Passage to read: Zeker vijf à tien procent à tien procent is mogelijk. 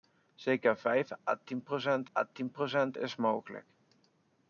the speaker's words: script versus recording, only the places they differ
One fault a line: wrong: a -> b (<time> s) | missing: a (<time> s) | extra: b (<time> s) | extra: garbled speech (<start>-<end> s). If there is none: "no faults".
no faults